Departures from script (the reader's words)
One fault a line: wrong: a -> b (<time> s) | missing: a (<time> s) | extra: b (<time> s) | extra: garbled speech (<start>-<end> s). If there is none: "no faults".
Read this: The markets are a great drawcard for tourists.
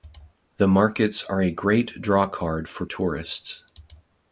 no faults